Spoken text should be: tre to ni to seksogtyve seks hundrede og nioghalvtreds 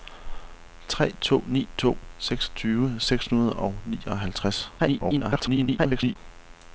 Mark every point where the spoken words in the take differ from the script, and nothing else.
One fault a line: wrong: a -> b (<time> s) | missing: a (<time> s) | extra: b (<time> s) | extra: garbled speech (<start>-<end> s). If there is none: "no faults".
extra: garbled speech (4.8-6.2 s)